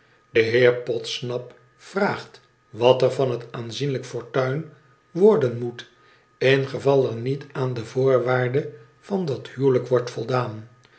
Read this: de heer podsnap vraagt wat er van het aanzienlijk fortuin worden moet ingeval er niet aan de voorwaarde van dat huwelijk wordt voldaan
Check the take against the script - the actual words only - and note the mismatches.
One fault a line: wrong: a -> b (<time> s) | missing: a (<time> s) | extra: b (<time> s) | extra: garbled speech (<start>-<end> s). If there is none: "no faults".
no faults